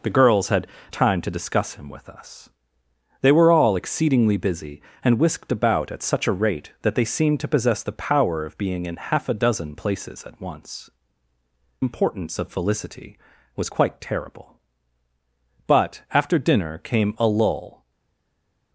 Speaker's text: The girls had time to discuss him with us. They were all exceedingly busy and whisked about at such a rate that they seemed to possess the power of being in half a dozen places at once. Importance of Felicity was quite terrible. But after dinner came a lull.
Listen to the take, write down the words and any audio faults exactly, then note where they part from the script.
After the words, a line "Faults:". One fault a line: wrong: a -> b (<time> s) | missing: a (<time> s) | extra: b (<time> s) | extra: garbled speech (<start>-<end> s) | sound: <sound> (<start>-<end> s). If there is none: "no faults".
The girls had time to discuss him with us. They were all exceedingly busy and whisked about at such a rate that they seemed to possess the power of being in half a dozen places at once. Importance of Felicity was quite terrible. But after dinner came a lull.
Faults:
no faults